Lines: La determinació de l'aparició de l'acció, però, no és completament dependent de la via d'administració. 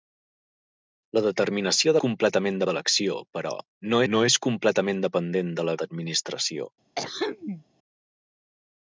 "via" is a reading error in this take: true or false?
true